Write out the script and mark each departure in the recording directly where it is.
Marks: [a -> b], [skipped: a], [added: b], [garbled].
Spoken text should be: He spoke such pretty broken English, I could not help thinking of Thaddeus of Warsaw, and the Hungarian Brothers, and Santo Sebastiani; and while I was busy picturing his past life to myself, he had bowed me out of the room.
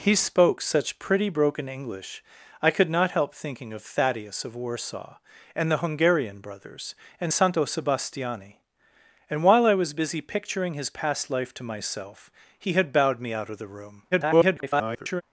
He spoke such pretty broken English, I could not help thinking of Thaddeus of Warsaw, and the Hungarian Brothers, and Santo Sebastiani; and while I was busy picturing his past life to myself, he had bowed me out of the room. [garbled]